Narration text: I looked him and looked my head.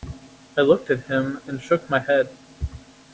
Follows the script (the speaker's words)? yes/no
no